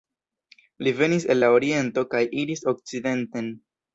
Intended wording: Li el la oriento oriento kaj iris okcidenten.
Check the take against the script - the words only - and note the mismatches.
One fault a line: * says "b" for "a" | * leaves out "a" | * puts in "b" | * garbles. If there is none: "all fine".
* puts in "venis"
* leaves out "oriento"